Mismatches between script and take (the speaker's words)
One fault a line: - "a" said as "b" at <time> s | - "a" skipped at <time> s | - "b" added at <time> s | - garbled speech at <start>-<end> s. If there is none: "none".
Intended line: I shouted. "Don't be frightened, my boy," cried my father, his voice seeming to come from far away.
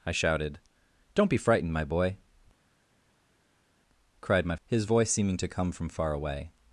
- "father" skipped at 4.6 s